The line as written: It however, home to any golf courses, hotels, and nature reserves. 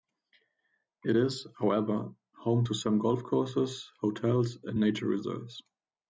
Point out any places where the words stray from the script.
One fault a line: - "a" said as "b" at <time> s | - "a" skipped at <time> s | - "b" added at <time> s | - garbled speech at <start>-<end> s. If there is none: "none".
- "is" added at 1.1 s
- "any" said as "some" at 2.8 s